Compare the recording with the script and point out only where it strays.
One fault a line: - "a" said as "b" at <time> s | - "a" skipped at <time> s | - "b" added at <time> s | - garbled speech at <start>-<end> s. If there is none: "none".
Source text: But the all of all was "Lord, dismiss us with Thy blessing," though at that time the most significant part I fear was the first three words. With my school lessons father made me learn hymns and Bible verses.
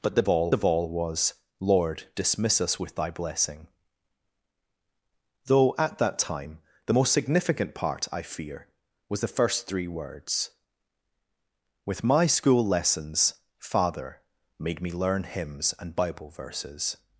none